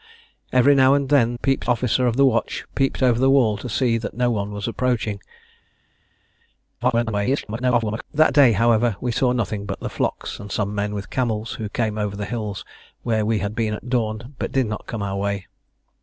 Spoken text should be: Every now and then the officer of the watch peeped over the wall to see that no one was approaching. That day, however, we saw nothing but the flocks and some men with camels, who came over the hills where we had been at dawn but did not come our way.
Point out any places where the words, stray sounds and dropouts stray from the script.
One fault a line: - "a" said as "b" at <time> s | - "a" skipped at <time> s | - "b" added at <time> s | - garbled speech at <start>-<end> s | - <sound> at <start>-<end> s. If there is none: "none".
- "the" said as "peeped" at 1.4 s
- garbled speech at 6.8-8.0 s